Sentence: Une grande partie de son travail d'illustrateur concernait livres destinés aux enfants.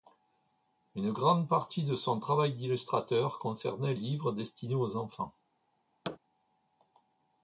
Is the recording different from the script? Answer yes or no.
no